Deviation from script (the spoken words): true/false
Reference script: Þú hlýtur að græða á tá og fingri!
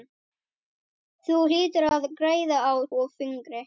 true